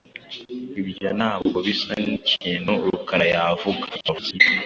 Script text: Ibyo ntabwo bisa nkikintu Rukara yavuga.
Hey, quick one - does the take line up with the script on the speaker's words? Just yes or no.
no